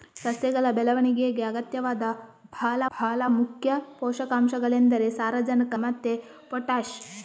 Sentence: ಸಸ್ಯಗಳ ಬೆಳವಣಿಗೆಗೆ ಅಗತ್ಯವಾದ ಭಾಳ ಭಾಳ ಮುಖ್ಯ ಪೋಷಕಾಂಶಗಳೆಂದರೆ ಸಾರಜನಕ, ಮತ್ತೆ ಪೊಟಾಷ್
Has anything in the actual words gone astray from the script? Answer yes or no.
no